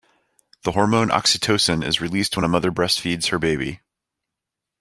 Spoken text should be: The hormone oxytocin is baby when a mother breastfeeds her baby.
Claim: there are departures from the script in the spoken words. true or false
true